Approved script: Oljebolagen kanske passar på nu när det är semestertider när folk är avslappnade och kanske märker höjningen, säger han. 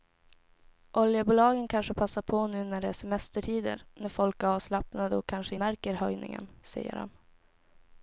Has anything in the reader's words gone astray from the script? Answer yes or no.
no